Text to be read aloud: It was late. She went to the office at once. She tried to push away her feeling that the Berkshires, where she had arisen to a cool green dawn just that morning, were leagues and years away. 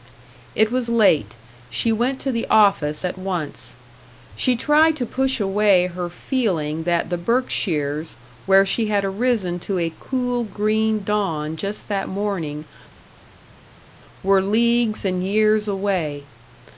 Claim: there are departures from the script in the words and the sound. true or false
false